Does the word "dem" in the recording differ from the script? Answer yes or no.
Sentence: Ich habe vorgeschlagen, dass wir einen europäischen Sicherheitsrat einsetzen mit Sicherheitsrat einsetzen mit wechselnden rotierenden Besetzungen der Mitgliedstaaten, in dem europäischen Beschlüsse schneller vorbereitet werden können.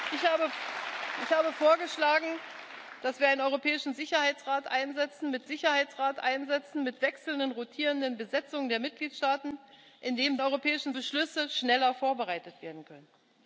no